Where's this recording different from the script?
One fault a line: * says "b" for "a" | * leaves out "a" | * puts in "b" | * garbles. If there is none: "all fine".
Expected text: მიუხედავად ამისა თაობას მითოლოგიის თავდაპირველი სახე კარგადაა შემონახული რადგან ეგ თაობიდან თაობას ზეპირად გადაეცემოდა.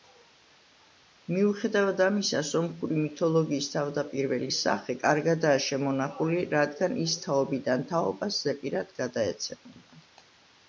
* says "სომხური" for "თაობას"
* says "ის" for "ეგ"